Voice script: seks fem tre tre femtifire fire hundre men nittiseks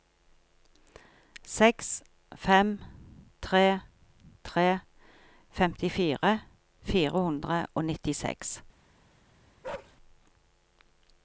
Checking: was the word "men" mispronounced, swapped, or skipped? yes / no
yes